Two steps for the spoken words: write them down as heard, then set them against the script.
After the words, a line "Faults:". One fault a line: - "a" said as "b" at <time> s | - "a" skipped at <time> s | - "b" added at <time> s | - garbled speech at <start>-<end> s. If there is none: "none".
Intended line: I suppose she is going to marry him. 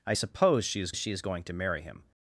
I suppose she is she is going to marry him.
Faults:
- "she is" added at 0.9 s